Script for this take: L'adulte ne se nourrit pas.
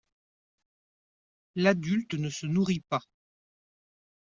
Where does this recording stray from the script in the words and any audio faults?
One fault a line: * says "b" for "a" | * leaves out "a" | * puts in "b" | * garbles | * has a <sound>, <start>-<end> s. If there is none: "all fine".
all fine